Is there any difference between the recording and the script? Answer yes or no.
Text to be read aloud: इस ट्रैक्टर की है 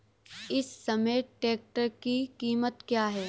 yes